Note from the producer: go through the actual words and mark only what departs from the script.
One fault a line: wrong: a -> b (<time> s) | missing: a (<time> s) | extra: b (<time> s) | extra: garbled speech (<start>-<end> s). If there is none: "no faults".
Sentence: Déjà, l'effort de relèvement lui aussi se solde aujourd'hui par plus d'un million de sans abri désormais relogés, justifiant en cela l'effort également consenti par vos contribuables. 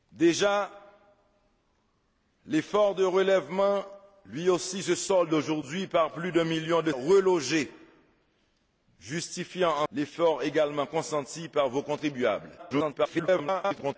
missing: sans abri désormais (6.9 s)
missing: cela (9.9 s)
extra: garbled speech (12.6-14.0 s)